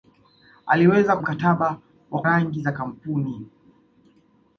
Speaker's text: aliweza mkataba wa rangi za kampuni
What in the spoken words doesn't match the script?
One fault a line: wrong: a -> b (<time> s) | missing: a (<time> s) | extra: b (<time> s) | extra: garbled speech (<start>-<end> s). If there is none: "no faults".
no faults